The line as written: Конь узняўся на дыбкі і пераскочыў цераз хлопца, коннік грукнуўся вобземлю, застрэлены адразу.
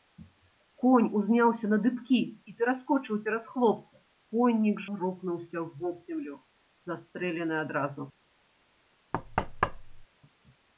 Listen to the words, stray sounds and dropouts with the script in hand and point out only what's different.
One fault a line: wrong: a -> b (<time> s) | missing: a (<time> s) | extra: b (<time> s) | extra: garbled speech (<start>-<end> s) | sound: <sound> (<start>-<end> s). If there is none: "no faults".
sound: thud (9.1-10.1 s)